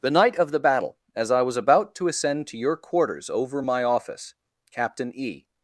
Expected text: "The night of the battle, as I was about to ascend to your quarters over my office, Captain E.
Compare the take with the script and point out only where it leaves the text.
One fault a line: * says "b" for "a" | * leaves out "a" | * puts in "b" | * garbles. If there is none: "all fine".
all fine